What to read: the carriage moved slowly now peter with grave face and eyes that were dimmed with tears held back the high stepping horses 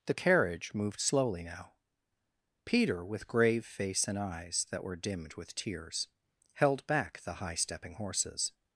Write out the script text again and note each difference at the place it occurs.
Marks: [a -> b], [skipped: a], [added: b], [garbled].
the carriage moved slowly now peter with grave face and eyes that were dimmed with tears held back the high stepping horses